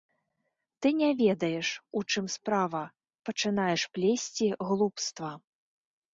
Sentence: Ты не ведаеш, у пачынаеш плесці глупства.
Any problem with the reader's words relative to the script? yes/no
yes